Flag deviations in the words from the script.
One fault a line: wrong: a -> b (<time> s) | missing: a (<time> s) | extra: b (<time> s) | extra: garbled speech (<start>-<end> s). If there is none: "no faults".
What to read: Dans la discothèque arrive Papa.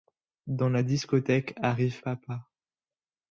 no faults